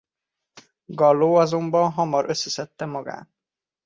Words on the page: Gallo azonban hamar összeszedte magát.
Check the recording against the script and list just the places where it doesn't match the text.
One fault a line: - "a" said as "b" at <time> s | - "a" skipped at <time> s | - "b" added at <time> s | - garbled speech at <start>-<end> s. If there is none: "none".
none